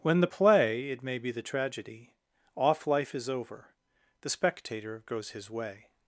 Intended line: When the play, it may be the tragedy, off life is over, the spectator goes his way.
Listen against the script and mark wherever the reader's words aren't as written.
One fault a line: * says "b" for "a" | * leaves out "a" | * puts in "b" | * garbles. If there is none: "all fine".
all fine